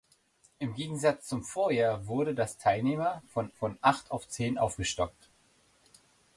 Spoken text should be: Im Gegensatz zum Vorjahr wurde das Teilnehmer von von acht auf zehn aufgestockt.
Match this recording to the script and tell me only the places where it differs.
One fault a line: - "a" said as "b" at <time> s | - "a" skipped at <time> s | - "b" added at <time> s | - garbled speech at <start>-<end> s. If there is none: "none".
none